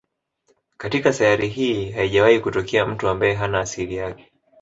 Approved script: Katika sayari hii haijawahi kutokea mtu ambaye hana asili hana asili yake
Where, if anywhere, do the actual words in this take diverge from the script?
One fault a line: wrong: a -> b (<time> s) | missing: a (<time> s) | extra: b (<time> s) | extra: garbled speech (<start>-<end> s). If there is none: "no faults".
missing: hana asili (4.0 s)